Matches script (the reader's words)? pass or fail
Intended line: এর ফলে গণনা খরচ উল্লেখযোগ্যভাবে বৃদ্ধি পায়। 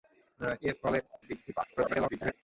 fail